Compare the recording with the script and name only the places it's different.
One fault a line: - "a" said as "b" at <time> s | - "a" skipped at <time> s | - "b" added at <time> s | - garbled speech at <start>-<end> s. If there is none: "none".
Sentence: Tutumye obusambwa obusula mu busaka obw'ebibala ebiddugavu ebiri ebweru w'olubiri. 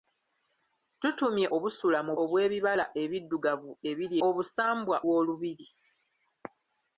- "obusambwa" skipped at 1.5 s
- "busaka" skipped at 2.1 s
- "ebweru" said as "obusambwa" at 4.3 s